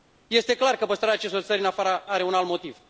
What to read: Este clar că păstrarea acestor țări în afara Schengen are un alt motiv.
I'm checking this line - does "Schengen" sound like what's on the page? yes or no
no